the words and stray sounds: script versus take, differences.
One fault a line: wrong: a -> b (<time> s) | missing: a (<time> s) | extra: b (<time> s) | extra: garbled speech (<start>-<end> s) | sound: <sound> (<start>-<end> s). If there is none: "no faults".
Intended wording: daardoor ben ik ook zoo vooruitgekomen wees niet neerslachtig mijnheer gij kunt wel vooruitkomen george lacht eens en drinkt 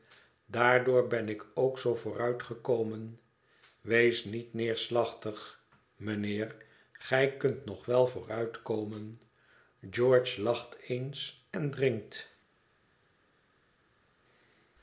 extra: nog (7.7 s)